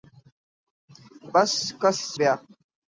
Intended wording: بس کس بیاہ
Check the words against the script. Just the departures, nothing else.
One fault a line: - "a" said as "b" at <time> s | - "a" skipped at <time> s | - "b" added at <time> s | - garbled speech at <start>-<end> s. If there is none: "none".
none